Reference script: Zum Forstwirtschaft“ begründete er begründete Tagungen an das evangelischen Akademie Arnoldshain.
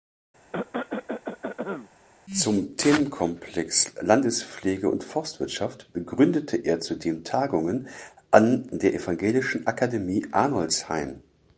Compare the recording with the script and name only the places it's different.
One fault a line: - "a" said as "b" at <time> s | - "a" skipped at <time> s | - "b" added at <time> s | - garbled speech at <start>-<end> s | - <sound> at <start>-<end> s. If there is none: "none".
- cough at 0.5-1.9 s
- "Themenkomplex Landespflege und" added at 2.8 s
- "begründete" said as "zudem" at 6.8 s
- "das" said as "der" at 8.7 s